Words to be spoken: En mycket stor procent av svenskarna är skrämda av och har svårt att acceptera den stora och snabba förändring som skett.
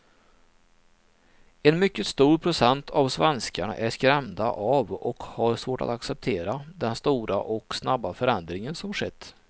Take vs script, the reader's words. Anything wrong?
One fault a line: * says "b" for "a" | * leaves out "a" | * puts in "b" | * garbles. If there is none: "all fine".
all fine